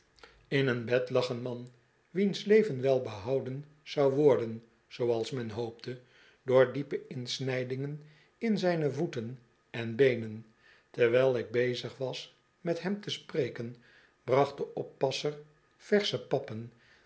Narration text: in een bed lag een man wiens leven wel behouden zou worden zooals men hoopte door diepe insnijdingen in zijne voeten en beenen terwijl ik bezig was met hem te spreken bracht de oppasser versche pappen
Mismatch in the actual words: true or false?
false